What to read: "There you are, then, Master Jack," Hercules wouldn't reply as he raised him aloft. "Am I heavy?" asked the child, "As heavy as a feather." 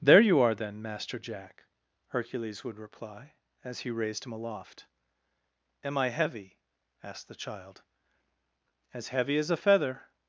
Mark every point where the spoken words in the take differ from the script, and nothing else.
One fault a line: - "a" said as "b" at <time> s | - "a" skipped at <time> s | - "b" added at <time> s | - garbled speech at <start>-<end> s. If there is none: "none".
- "wouldn't" said as "would" at 2.6 s